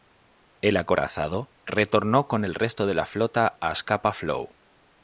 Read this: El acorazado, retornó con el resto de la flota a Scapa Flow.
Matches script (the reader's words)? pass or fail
pass